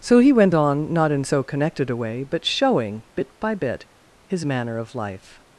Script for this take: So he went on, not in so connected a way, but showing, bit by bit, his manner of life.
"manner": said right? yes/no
yes